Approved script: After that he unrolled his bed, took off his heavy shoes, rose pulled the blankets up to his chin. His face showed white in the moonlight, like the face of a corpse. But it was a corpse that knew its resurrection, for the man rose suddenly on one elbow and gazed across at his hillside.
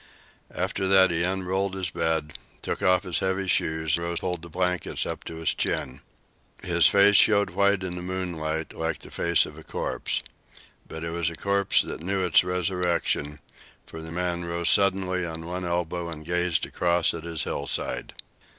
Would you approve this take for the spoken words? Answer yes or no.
yes